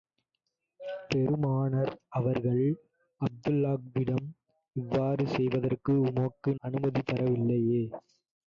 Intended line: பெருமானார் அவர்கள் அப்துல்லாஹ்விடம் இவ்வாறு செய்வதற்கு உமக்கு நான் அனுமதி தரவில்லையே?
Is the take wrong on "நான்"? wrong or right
wrong